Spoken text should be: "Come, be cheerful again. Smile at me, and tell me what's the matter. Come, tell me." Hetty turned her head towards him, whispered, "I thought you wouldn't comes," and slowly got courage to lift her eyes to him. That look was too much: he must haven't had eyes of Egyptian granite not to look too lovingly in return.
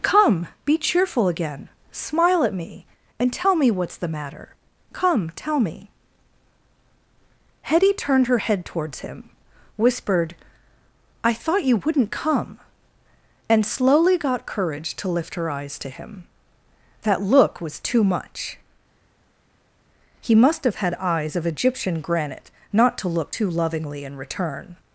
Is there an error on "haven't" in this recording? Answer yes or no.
yes